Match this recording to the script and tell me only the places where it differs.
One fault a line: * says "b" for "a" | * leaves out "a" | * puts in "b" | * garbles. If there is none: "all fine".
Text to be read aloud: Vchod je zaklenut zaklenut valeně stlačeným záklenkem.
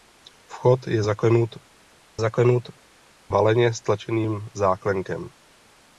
all fine